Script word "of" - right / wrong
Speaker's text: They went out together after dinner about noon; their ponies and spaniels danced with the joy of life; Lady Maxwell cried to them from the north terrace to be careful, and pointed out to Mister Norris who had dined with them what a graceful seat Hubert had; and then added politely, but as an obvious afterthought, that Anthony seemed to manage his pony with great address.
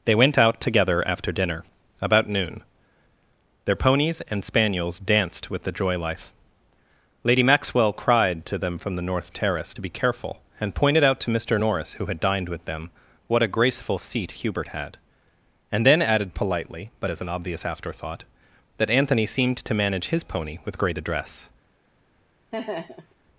wrong